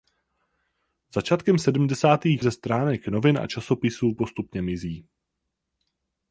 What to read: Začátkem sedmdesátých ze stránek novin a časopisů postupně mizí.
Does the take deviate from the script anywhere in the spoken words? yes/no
no